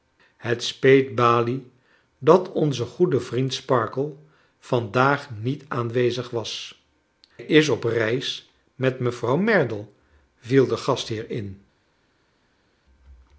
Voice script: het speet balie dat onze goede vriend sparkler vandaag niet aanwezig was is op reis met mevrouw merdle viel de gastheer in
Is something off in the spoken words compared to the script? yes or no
no